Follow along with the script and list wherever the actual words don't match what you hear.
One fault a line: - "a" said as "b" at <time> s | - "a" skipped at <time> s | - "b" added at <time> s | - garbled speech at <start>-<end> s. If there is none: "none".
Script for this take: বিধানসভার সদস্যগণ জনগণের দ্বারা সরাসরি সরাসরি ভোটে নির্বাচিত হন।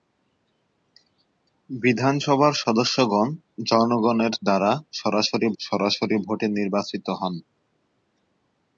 none